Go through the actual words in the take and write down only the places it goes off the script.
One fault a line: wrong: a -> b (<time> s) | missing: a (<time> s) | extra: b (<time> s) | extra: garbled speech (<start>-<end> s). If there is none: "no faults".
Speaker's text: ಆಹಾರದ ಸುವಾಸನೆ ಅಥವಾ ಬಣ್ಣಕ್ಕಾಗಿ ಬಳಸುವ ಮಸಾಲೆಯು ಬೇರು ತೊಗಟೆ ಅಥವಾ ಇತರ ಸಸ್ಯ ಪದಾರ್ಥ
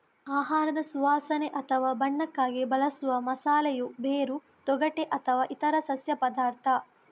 no faults